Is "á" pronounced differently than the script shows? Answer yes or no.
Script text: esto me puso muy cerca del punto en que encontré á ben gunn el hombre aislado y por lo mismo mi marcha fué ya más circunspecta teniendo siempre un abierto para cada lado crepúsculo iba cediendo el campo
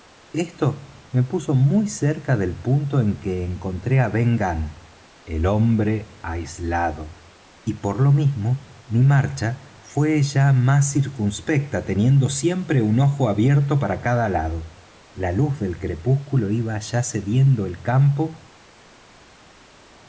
no